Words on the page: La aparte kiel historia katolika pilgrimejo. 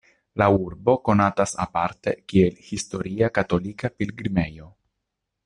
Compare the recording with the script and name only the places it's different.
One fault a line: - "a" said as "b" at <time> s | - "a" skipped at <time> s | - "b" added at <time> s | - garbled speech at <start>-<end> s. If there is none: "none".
- "urbo konatas" added at 0.5 s